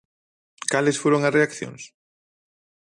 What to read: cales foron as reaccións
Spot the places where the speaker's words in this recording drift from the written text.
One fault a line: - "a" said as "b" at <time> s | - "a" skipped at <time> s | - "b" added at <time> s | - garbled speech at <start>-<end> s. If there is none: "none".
none